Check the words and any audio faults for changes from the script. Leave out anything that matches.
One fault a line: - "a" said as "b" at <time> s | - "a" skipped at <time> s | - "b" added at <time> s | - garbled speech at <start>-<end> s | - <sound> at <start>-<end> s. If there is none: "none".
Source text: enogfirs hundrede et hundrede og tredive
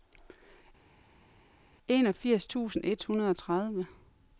- "hundrede" said as "tusind" at 2.5 s